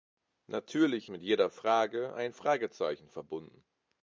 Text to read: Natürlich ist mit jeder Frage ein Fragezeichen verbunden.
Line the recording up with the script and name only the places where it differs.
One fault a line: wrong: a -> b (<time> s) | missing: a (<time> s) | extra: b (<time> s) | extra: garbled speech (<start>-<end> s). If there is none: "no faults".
missing: ist (1.1 s)